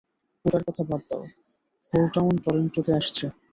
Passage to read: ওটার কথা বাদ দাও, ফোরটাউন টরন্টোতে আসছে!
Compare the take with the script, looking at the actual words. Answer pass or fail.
pass